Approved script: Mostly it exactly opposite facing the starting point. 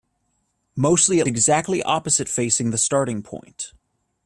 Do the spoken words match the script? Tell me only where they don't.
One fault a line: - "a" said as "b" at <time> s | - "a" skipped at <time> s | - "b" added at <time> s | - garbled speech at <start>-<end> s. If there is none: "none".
none